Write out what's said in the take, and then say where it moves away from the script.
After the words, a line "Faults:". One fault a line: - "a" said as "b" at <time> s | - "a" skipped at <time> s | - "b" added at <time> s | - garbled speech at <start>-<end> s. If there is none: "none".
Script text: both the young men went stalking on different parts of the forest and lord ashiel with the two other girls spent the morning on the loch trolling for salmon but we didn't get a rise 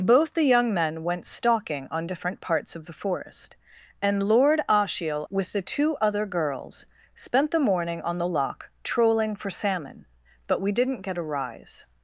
both the young men went stalking on different parts of the forest and lord ashiel with the two other girls spent the morning on the loch trolling for salmon but we didn't get a rise
Faults:
none